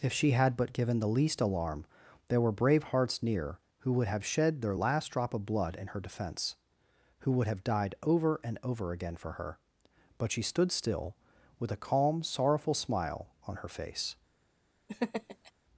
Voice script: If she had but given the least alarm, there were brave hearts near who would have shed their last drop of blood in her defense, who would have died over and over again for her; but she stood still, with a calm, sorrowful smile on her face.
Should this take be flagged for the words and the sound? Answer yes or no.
yes